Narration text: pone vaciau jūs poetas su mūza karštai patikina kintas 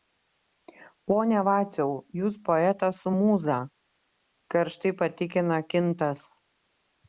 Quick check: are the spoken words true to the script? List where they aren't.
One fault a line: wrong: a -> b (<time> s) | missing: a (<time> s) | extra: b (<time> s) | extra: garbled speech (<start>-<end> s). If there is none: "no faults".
no faults